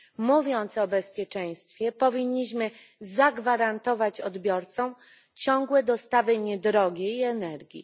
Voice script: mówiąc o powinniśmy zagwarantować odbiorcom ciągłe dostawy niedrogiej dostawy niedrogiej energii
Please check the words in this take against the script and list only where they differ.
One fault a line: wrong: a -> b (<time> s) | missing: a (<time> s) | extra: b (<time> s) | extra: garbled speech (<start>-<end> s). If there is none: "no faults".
extra: bezpieczeństwie (0.9 s)
missing: dostawy niedrogiej (7.2 s)